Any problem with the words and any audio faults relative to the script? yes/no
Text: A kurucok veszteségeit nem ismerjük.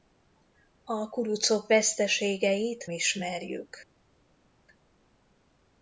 yes